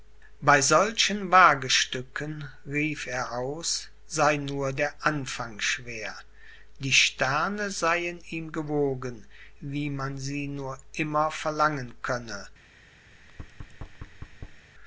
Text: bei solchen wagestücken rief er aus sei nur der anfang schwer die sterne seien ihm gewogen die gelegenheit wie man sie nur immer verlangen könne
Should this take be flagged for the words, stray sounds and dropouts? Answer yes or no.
yes